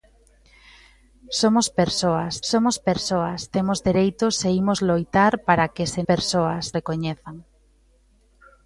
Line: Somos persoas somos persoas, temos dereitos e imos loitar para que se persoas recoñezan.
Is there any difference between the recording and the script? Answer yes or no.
no